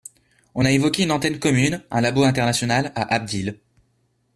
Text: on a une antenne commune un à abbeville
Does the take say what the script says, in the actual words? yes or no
no